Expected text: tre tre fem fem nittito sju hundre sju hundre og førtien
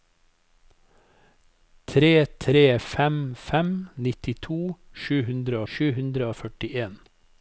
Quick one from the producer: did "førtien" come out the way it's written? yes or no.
yes